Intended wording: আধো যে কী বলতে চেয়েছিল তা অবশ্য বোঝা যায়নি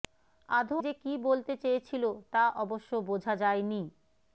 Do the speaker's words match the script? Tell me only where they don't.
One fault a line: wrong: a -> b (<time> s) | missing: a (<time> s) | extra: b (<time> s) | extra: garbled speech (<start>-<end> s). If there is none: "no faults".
no faults